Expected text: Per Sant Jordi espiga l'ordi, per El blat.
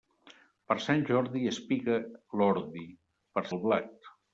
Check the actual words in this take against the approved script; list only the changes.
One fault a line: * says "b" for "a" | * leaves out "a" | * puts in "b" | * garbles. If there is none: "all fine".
all fine